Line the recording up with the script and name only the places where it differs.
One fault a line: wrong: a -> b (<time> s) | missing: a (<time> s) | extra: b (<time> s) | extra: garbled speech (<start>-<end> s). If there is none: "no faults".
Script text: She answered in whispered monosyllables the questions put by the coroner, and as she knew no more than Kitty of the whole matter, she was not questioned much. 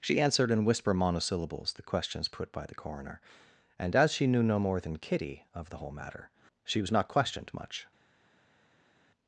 wrong: whispered -> whisper (0.7 s)